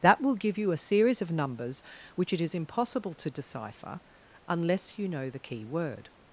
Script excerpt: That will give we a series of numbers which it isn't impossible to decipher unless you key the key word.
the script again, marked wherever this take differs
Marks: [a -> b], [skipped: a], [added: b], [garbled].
That will give [we -> you] a series of numbers which it [isn't -> is] impossible to decipher unless you [key -> know] the key word.